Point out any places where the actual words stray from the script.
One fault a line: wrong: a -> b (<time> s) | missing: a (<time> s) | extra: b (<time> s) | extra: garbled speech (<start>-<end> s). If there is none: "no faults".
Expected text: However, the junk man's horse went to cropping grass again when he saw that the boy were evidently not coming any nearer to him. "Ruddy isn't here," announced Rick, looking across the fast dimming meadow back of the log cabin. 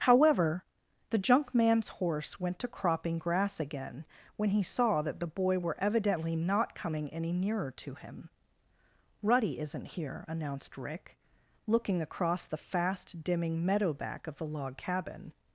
no faults